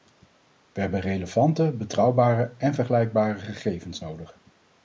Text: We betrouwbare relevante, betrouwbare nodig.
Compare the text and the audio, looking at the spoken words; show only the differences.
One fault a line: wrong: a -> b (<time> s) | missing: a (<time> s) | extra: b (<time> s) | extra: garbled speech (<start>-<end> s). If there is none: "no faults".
wrong: betrouwbare -> hebben (0.8 s)
extra: en vergelijkbare gegevens (2.6 s)